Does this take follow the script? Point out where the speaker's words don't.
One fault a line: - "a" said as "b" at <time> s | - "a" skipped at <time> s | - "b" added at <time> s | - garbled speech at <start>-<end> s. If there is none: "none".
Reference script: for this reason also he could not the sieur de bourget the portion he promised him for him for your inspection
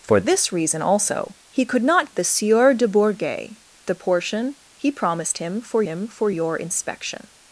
none